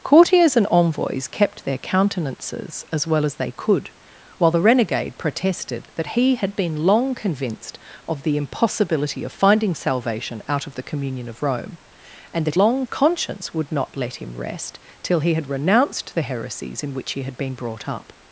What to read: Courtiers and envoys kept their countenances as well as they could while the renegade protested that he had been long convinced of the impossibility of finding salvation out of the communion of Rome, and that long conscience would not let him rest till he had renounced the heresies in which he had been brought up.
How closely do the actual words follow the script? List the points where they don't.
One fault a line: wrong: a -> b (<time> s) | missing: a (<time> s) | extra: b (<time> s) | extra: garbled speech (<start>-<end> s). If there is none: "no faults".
no faults